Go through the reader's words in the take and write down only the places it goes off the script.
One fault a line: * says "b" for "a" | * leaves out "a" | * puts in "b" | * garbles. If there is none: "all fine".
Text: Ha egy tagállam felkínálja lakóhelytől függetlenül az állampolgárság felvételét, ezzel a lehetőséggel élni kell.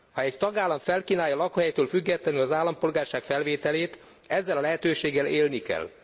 all fine